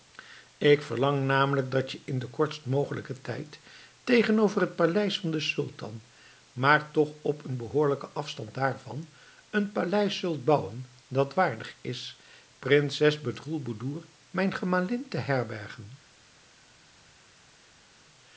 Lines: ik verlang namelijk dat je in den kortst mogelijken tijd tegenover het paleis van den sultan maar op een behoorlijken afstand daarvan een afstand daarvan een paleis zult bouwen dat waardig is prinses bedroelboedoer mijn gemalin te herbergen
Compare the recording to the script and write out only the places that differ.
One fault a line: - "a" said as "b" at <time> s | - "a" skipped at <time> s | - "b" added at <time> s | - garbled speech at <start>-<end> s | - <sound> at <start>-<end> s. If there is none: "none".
- "toch" added at 6.9 s
- "afstand daarvan een" skipped at 9.7 s